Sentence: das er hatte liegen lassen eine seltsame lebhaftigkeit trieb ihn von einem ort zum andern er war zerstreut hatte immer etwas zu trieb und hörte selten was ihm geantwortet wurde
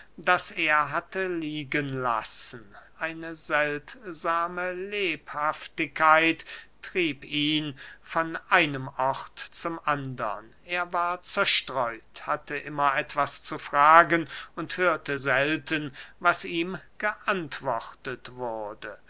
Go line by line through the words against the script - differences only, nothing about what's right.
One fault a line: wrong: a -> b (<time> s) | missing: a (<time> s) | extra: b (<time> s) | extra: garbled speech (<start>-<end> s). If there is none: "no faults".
wrong: trieb -> fragen (13.6 s)